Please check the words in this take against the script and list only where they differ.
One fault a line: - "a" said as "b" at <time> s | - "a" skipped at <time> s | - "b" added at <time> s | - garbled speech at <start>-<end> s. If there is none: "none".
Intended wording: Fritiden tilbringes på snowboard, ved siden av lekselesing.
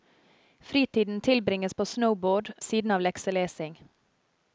- "ved" skipped at 2.5 s